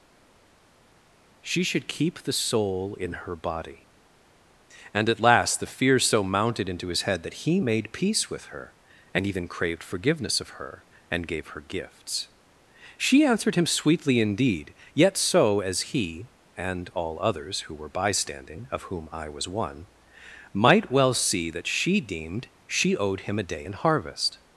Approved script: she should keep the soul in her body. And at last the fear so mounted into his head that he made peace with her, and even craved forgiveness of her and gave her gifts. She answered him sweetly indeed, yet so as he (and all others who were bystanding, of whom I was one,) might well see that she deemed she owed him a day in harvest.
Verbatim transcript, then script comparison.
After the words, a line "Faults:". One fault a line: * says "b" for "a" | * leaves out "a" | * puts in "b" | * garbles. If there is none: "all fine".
she should keep the soul in her body. And at last the fear so mounted into his head that he made peace with her, and even craved forgiveness of her and gave her gifts. She answered him sweetly indeed, yet so as he (and all others who were bystanding, of whom I was one,) might well see that she deemed she owed him a day in harvest.
Faults:
all fine